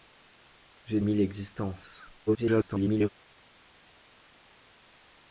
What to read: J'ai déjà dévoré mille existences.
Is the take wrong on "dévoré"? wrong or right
wrong